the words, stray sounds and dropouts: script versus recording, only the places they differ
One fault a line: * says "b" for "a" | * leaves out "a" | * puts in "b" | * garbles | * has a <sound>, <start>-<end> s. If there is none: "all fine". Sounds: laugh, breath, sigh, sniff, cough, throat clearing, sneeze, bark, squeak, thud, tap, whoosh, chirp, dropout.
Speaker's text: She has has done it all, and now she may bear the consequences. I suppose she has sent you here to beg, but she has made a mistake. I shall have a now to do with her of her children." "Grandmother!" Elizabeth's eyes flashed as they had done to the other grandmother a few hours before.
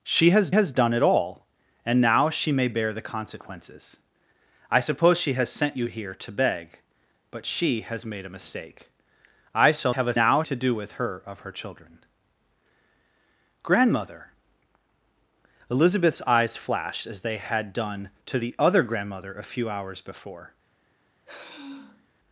* has a sigh, 21.2-22.1 s